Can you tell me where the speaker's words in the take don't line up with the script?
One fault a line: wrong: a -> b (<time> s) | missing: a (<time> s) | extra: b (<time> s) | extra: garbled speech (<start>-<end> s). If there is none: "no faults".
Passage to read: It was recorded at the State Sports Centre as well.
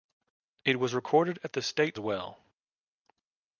missing: Sports Centre as (2.0 s)